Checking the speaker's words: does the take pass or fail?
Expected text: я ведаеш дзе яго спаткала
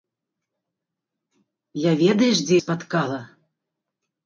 fail